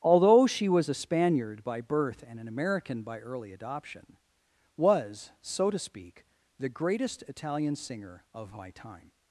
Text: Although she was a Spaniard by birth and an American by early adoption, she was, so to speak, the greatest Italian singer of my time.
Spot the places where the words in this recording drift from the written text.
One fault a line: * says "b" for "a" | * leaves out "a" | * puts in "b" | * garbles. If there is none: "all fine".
* leaves out "she"